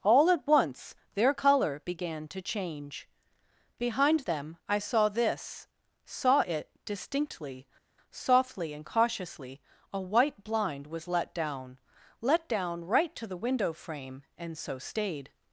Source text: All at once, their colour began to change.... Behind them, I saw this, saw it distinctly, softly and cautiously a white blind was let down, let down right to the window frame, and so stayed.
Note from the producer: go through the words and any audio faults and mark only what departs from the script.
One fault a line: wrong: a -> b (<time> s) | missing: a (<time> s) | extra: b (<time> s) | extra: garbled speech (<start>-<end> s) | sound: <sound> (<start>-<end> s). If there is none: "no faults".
no faults